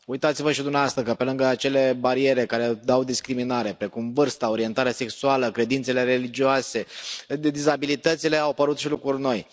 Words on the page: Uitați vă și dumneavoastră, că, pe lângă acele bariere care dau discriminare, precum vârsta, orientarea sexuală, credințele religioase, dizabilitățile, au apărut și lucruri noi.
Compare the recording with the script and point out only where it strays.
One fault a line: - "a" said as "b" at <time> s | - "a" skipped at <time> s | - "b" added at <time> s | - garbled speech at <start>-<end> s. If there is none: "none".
none